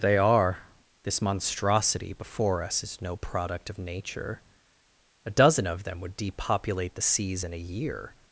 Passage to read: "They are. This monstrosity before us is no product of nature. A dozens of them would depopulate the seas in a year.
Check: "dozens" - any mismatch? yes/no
yes